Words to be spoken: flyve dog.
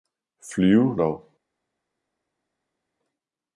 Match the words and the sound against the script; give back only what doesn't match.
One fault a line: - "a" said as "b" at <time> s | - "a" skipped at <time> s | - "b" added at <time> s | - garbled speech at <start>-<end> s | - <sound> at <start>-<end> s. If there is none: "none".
none